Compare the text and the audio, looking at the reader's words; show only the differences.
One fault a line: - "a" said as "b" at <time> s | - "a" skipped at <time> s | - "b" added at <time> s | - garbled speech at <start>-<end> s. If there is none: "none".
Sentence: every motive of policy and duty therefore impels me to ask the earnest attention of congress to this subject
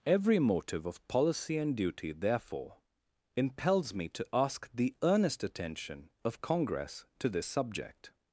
none